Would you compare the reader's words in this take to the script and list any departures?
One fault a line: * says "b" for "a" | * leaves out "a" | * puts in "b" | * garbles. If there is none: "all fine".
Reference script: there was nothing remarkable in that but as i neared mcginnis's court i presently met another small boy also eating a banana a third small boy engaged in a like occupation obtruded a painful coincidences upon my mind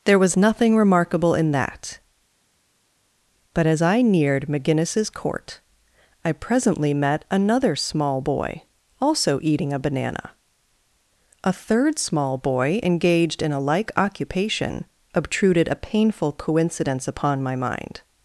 * says "coincidence" for "coincidences"